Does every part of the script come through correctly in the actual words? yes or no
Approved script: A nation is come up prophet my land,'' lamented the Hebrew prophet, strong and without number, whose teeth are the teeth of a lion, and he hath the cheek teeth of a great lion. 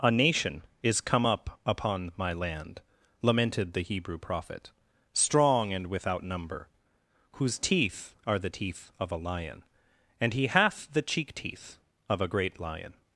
no